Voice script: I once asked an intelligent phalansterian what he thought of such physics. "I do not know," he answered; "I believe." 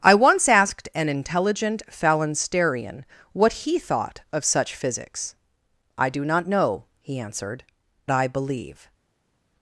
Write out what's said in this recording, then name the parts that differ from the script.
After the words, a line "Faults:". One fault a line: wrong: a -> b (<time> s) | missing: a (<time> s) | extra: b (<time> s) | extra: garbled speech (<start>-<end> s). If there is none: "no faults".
I once asked an intelligent phalansterian what he thought of such physics. "I do not know," he answered; "I believe."
Faults:
no faults